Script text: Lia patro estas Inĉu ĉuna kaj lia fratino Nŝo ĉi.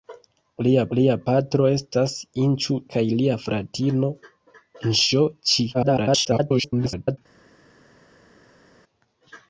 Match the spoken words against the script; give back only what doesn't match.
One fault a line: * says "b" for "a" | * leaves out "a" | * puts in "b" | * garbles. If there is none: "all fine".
* puts in "lia"
* leaves out "ĉuna"
* garbles